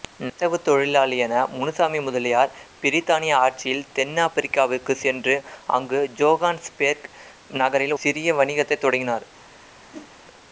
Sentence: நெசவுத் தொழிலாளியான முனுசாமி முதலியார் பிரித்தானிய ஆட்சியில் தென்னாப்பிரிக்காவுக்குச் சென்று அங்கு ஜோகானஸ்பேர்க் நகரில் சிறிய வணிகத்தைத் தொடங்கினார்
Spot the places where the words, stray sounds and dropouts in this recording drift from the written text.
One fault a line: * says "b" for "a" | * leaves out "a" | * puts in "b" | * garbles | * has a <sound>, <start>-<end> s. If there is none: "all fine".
* has a whoosh, 9.9-10.1 s